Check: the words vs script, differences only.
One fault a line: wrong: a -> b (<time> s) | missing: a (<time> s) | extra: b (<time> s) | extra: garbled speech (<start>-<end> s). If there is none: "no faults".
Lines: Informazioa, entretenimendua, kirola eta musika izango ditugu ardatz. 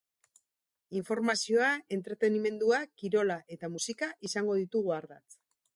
no faults